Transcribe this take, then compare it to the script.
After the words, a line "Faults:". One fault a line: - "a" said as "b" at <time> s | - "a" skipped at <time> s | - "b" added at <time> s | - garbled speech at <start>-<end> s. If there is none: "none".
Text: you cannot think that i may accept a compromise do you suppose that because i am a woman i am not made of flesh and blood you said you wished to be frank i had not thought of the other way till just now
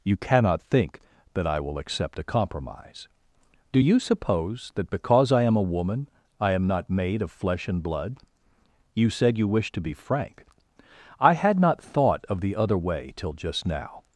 you cannot think that i will accept a compromise do you suppose that because i am a woman i am not made of flesh and blood you said you wished to be frank i had not thought of the other way till just now
Faults:
- "may" said as "will" at 1.6 s